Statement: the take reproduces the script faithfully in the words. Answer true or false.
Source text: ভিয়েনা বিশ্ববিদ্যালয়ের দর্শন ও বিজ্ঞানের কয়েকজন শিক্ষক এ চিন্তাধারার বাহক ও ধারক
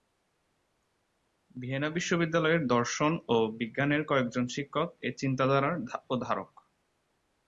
false